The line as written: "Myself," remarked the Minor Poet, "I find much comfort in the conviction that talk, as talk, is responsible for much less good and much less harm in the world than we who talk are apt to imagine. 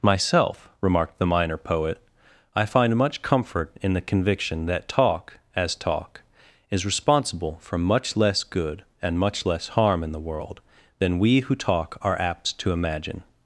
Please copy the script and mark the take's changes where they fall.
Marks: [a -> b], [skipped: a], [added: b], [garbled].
"Myself," remarked the Minor Poet, "I find much comfort in the conviction that talk, as talk, is responsible for much less good and much less harm in the world than we who talk are apt to imagine.